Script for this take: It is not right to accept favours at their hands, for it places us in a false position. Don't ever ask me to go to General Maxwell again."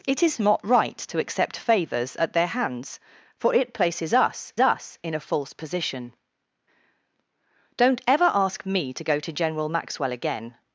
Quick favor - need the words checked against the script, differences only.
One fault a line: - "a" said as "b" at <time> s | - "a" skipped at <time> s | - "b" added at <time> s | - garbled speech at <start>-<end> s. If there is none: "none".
- "us" added at 4.6 s